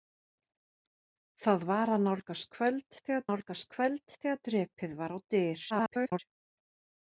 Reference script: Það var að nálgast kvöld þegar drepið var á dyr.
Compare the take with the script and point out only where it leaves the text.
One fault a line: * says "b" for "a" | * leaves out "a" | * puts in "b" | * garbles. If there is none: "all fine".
* puts in "nálgast kvöld þegar"
* garbles